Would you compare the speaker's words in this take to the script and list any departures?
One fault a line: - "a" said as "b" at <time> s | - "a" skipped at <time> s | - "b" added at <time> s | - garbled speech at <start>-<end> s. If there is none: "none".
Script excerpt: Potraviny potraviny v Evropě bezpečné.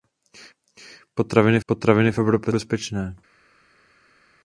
none